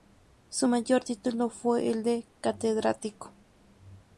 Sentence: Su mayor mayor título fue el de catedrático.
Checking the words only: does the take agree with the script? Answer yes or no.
no